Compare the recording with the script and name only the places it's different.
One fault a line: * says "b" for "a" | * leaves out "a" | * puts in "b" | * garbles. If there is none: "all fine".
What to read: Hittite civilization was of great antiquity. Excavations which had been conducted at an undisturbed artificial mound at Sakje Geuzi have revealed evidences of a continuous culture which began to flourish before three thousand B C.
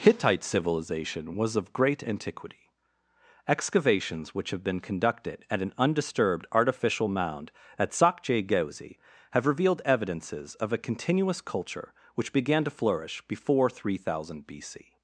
* says "have" for "had"